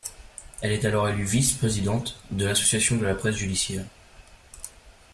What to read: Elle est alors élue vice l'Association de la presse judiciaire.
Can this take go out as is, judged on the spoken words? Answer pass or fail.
fail